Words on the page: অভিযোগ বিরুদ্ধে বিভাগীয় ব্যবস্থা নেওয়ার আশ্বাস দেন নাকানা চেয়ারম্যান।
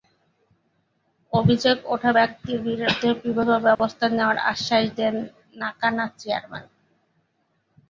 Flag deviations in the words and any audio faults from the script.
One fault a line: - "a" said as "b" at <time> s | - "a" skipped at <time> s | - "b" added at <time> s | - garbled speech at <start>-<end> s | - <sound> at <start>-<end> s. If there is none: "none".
- "ওঠা ব্যক্তির" added at 1.9 s
- dropout at 3.8-3.8 s